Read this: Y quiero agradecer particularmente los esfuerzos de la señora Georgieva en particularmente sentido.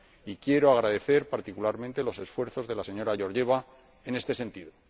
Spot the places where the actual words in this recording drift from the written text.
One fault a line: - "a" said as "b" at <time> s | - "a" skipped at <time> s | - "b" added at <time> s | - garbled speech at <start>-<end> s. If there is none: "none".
- "particularmente" said as "este" at 4.1 s